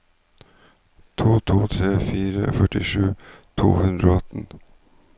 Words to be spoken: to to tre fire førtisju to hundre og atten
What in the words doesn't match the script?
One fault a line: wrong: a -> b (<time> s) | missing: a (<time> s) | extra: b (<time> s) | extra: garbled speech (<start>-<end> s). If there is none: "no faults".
no faults